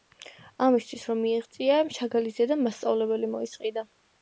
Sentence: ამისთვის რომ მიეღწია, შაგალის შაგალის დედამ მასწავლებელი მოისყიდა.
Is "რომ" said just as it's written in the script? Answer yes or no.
yes